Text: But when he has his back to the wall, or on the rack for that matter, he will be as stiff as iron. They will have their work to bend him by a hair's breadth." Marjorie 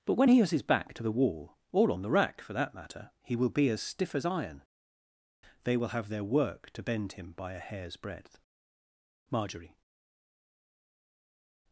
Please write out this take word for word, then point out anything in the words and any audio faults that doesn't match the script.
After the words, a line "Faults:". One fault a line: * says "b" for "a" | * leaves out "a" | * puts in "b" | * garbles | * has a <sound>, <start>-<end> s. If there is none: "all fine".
But when he has his back to the wall, or on the rack for that matter, he will be as stiff as iron. They will have their work to bend him by a hair's breadth." Marjorie
Faults:
all fine